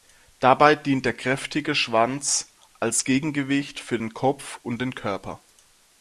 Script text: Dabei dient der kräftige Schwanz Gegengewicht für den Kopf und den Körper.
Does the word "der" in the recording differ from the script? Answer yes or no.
no